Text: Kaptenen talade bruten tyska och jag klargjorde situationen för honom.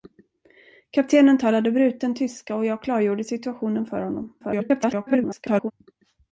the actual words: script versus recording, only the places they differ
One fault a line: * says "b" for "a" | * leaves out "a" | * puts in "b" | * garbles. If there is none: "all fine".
* garbles